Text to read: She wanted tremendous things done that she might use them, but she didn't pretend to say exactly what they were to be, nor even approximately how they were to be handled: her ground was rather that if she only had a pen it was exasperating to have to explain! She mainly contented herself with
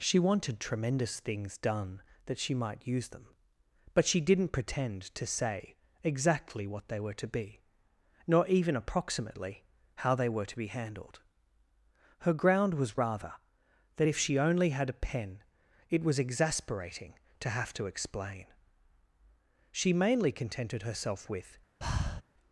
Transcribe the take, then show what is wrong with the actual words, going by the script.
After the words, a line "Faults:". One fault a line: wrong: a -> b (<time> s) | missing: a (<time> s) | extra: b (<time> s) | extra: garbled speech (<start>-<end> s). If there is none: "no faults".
She wanted tremendous things done that she might use them, but she didn't pretend to say exactly what they were to be, nor even approximately how they were to be handled: her ground was rather that if she only had a pen it was exasperating to have to explain! She mainly contented herself with
Faults:
no faults